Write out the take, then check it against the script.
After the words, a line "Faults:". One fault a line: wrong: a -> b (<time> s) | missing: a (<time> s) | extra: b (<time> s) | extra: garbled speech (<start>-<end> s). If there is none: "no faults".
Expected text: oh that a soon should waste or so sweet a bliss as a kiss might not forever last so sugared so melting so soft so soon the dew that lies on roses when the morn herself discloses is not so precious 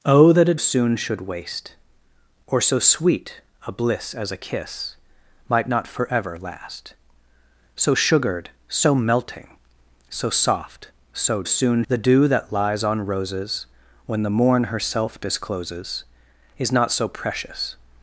oh that a soon should waste or so sweet a bliss as a kiss might not forever last so sugared so melting so soft so soon the dew that lies on roses when the morn herself discloses is not so precious
Faults:
no faults